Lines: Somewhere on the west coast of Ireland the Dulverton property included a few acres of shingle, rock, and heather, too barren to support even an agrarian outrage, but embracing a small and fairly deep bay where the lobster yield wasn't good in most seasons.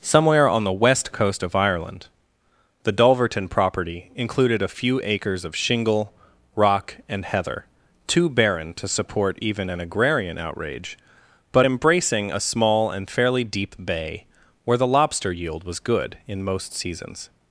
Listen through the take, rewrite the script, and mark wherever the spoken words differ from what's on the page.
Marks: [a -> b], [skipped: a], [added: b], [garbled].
Somewhere on the west coast of Ireland the Dulverton property included a few acres of shingle, rock, and heather, too barren to support even an agrarian outrage, but embracing a small and fairly deep bay where the lobster yield [wasn't -> was] good in most seasons.